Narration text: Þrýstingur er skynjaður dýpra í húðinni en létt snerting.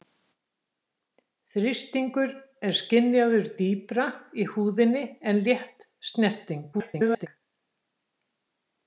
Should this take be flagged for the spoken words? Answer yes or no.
yes